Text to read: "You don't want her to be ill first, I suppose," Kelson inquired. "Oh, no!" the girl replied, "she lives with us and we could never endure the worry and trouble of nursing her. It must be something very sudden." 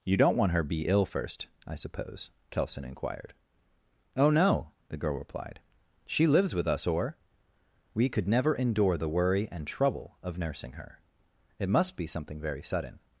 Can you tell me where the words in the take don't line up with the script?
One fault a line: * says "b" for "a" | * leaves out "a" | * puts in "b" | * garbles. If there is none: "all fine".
* leaves out "to"
* says "or" for "and"